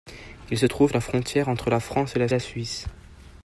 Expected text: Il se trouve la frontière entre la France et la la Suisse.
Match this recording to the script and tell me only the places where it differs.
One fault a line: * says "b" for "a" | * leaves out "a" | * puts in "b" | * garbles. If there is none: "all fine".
all fine